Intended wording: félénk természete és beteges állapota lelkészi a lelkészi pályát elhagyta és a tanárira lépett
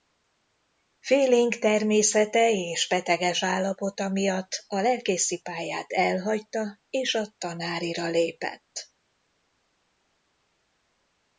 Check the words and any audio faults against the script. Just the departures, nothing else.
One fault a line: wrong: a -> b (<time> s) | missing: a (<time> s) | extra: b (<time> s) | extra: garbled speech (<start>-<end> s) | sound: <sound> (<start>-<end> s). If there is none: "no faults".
wrong: lelkészi -> miatt (4.1 s)